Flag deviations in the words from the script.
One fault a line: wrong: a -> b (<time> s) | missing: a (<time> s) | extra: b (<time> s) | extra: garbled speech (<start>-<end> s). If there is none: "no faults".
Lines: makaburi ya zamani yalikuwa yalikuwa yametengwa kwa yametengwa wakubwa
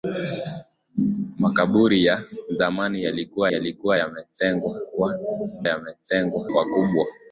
no faults